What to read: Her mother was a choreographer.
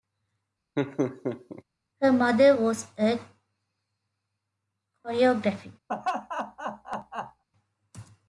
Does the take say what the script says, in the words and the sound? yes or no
no